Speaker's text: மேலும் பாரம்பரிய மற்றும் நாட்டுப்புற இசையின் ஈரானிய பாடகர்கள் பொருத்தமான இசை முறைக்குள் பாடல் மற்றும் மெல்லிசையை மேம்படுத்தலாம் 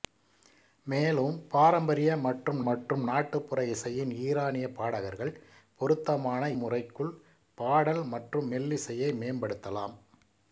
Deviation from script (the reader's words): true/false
true